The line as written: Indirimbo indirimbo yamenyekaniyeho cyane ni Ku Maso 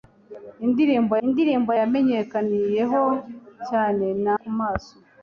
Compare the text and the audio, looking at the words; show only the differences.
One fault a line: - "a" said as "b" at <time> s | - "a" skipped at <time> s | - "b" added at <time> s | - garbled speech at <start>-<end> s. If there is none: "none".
none